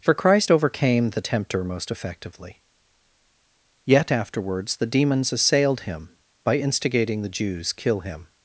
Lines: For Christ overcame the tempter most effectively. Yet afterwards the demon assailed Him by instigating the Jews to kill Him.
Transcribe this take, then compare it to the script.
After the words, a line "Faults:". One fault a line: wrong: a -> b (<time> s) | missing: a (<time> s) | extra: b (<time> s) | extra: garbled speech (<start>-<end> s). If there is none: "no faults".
For Christ overcame the tempter most effectively. Yet afterwards the demons assailed Him by instigating the Jews kill Him.
Faults:
wrong: demon -> demons (4.9 s)
missing: to (7.7 s)